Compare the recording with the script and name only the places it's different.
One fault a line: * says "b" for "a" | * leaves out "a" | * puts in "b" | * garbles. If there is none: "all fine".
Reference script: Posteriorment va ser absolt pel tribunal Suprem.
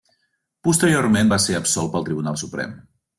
all fine